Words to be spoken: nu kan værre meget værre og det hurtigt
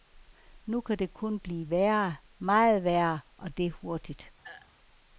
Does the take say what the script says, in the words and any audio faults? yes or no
no